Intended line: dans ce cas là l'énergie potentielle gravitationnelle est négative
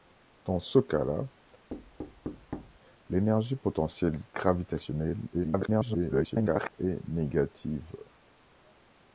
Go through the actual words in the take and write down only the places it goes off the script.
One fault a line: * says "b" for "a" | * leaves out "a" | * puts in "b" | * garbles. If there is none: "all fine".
* garbles